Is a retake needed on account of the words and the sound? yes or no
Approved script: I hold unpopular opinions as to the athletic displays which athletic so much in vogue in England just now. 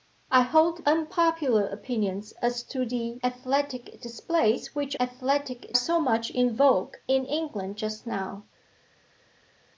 no